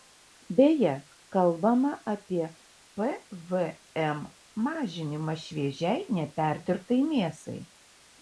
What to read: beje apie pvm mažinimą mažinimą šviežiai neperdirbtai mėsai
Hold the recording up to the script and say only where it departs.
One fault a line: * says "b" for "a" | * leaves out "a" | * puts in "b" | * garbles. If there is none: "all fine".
* puts in "kalbama"
* leaves out "mažinimą"